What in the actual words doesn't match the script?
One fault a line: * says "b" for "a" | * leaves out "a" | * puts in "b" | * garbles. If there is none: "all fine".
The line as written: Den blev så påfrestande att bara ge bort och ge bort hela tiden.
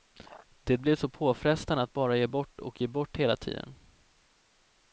* says "Det" for "Den"